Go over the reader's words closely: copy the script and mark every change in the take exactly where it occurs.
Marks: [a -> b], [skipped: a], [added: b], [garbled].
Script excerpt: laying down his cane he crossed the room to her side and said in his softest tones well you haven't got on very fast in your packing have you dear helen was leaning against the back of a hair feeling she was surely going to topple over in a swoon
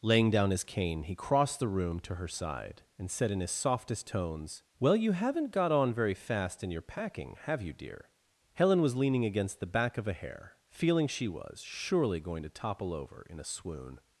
laying down his cane he crossed the room to her side and said in his softest tones well you haven't got on very fast in your packing have you dear helen was leaning against the back of a hair feeling she was surely going to topple over in a swoon